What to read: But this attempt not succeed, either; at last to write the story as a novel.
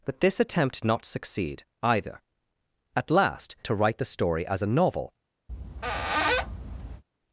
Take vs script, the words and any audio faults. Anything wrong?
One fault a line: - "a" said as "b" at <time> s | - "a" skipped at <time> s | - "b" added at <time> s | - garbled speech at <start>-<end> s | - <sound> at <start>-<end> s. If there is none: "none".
- squeak at 5.5-7.0 s